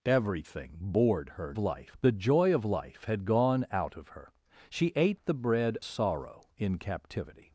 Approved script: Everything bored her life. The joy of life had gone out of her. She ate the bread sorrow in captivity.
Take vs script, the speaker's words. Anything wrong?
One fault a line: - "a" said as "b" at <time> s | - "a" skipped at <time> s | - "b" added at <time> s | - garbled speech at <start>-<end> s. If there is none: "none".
none